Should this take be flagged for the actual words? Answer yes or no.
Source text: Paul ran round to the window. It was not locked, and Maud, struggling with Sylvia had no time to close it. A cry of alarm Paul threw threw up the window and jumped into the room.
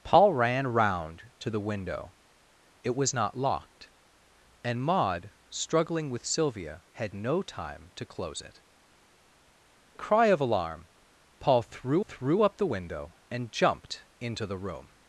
no